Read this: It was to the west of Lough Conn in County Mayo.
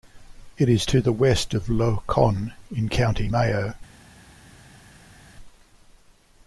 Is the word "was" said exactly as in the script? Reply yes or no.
no